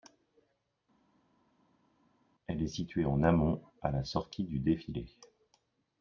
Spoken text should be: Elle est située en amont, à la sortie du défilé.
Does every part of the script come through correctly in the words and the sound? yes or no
yes